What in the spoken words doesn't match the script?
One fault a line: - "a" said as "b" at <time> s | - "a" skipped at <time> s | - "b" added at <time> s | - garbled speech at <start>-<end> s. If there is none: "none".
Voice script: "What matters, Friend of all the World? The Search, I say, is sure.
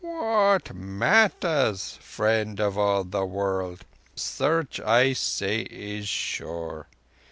- "The" skipped at 3.9 s